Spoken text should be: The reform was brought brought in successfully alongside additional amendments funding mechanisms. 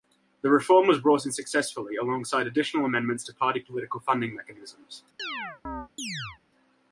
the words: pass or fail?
fail